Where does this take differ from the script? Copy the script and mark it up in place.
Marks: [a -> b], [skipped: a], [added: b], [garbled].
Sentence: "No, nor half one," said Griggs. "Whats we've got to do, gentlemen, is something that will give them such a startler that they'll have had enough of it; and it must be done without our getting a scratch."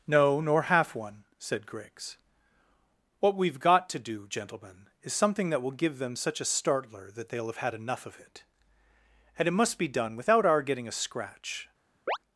"No, nor half one," said Griggs. ["Whats -> What] we've got to do, gentlemen, is something that will give them such a startler that they'll have had enough of it; and it must be done without our getting a scratch."